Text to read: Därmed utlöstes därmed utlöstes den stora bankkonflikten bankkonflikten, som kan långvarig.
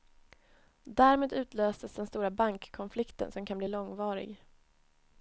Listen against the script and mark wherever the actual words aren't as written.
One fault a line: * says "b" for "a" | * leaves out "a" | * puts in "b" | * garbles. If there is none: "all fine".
* leaves out "därmed utlöstes"
* leaves out "bankkonflikten"
* puts in "bli"